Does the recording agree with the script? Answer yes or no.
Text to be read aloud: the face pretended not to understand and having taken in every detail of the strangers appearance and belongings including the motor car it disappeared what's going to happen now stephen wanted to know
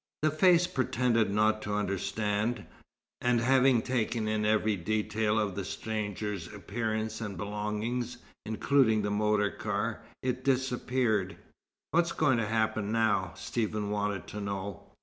yes